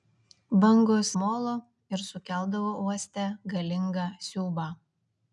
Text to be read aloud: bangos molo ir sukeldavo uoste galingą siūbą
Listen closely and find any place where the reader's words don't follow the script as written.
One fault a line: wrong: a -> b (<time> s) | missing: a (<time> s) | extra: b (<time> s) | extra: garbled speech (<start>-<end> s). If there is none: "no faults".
no faults